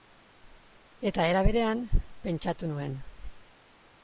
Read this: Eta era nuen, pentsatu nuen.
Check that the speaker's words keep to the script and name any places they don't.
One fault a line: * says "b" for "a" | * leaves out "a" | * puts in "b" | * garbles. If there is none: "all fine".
* says "berean" for "nuen"